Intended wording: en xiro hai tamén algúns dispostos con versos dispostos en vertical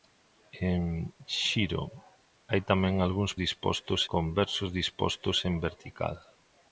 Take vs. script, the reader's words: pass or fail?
pass